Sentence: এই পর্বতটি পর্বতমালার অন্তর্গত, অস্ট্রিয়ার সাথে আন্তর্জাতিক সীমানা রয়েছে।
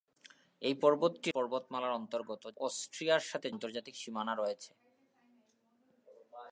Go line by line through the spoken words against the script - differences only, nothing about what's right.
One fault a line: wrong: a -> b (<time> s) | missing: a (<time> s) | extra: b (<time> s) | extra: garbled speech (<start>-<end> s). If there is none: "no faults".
no faults